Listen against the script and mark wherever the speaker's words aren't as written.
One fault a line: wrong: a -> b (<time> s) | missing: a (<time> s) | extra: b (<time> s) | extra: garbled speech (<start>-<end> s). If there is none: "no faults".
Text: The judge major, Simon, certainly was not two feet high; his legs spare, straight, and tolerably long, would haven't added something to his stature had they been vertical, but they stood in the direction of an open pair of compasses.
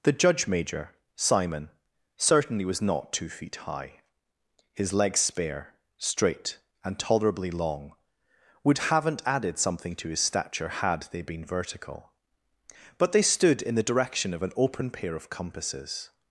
no faults